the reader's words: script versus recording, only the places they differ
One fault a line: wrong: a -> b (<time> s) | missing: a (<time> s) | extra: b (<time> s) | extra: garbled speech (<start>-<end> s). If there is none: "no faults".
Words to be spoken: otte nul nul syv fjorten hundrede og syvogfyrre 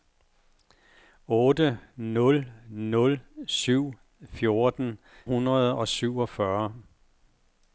no faults